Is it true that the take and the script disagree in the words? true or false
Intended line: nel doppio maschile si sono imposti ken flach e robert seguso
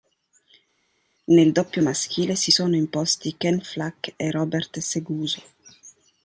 false